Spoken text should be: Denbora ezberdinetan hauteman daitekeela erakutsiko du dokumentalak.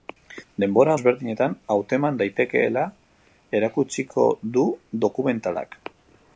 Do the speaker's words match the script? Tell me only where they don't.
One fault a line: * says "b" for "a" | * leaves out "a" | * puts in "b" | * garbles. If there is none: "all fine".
all fine